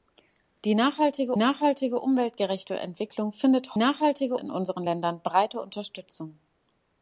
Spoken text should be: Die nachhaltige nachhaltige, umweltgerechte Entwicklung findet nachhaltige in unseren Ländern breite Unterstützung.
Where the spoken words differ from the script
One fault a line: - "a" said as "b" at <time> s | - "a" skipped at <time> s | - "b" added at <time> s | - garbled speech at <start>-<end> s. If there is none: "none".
none